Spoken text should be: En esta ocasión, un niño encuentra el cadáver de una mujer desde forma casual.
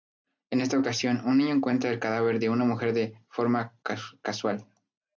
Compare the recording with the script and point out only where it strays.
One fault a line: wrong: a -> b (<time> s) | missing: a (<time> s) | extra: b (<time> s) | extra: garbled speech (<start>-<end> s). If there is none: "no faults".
wrong: desde -> de (2.9 s)